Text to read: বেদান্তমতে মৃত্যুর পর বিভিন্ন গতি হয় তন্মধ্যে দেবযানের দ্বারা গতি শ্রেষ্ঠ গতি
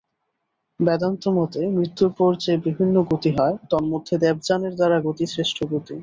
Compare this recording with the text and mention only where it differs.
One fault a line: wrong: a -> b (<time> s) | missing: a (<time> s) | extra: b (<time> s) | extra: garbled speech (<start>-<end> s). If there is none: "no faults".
extra: যে (2.4 s)